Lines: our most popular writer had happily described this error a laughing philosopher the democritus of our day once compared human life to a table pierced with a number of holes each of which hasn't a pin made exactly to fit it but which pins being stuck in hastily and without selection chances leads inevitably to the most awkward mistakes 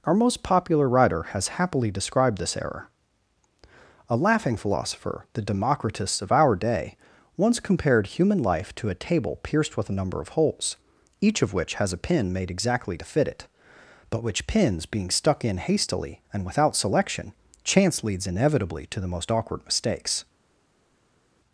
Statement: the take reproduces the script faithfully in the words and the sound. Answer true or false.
false